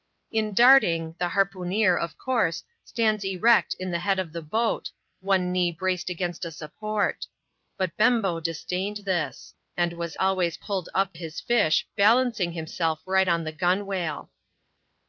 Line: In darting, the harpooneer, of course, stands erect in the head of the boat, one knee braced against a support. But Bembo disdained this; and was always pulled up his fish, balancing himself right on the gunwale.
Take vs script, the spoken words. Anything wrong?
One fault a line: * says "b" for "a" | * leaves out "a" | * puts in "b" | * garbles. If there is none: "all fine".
all fine